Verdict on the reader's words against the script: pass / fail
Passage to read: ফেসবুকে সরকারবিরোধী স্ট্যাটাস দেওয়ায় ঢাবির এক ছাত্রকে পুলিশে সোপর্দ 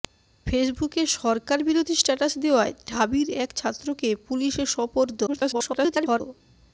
fail